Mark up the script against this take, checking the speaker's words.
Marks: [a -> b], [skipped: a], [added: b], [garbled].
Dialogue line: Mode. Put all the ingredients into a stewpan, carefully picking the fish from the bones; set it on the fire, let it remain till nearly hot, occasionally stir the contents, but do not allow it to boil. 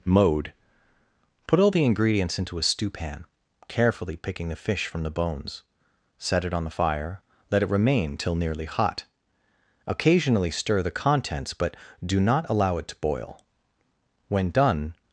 Mode. Put all the ingredients into a stewpan, carefully picking the fish from the bones; set it on the fire, let it remain till nearly hot, occasionally stir the contents, but do not allow it to boil. [added: When done]